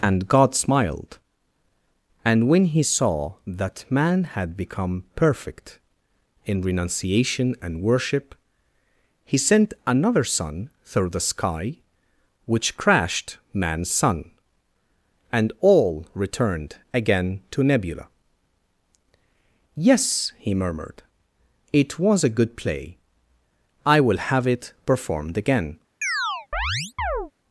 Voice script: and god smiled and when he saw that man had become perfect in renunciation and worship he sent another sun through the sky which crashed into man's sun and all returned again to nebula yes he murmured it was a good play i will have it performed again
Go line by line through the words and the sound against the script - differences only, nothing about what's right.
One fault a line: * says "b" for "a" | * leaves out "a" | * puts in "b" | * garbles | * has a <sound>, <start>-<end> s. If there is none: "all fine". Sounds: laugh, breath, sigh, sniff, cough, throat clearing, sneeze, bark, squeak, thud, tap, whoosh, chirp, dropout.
* leaves out "into"
* has a chirp, 26.0-27.3 s